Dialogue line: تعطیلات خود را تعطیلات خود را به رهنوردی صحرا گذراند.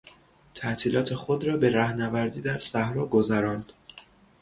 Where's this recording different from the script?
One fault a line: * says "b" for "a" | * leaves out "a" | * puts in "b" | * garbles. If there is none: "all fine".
* leaves out "تعطیلات خود را"
* puts in "در"